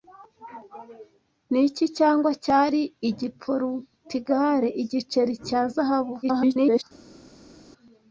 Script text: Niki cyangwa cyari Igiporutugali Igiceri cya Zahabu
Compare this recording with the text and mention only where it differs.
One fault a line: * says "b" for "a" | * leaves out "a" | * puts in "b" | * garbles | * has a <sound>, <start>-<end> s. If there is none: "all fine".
* garbles